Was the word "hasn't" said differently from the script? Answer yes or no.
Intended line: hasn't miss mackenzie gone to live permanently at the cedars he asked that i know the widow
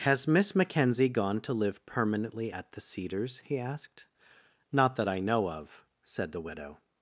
yes